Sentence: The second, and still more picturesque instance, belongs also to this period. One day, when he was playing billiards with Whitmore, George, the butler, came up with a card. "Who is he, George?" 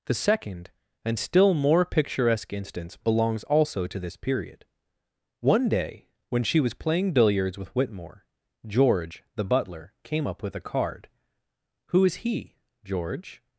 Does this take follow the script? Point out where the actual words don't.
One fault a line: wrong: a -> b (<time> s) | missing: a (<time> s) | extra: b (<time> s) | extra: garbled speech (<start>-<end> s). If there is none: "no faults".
wrong: he -> she (6.4 s)